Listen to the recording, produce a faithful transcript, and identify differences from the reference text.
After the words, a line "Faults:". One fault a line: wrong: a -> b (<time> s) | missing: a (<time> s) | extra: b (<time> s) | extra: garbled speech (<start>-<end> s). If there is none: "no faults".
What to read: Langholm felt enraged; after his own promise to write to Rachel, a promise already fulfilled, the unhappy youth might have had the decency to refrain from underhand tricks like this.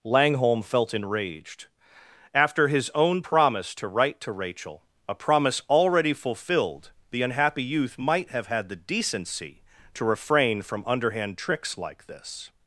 Langholm felt enraged; after his own promise to write to Rachel, a promise already fulfilled, the unhappy youth might have had the decency to refrain from underhand tricks like this.
Faults:
no faults